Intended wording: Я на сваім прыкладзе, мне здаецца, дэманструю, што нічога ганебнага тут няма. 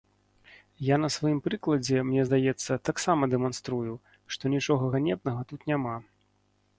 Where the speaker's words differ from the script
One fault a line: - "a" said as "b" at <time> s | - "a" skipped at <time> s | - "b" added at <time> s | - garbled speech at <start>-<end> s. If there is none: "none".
- "таксама" added at 2.9 s